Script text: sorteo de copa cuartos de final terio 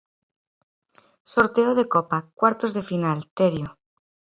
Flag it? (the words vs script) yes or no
no